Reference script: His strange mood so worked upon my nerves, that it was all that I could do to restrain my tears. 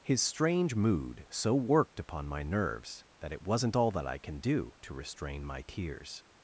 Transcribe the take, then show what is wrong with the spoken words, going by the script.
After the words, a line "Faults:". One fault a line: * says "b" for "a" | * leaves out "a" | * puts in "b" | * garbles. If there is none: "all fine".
His strange mood so worked upon my nerves, that it wasn't all that I can do to restrain my tears.
Faults:
* says "wasn't" for "was"
* says "can" for "could"